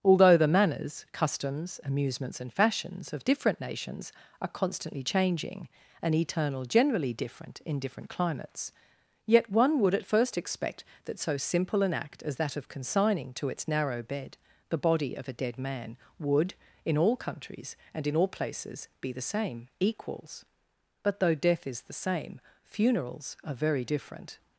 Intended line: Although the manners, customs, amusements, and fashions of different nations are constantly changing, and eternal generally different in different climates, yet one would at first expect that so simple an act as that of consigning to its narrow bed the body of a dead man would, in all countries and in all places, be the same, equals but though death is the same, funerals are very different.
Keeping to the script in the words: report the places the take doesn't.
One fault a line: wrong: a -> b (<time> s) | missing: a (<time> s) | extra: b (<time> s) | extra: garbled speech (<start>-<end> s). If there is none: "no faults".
no faults